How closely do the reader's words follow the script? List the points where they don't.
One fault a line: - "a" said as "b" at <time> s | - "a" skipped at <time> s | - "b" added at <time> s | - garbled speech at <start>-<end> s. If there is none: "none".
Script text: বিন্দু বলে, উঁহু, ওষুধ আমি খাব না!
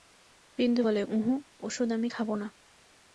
none